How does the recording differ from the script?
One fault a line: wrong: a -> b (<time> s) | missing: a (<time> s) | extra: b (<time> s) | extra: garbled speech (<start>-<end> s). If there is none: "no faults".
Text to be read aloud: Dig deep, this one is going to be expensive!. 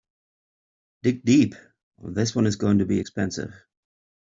no faults